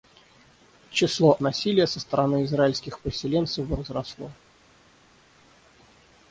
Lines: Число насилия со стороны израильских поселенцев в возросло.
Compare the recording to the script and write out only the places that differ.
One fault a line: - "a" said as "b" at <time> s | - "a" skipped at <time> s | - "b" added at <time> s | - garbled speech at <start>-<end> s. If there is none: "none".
none